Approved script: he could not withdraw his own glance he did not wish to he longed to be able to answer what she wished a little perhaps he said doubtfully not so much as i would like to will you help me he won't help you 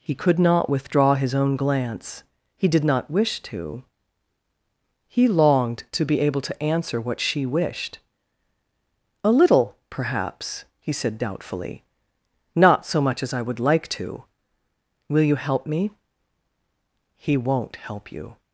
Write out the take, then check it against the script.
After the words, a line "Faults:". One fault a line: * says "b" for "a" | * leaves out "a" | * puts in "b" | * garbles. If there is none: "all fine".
he could not withdraw his own glance he did not wish to he longed to be able to answer what she wished a little perhaps he said doubtfully not so much as i would like to will you help me he won't help you
Faults:
all fine